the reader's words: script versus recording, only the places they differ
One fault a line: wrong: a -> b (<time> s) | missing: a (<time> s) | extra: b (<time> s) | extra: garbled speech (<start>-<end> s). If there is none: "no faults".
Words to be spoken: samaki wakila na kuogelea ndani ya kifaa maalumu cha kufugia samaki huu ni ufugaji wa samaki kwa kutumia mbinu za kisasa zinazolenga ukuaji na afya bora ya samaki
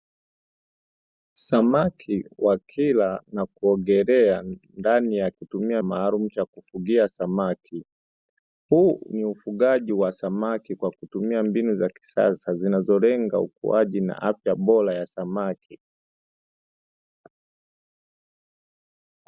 wrong: kifaa -> kutumia (5.3 s)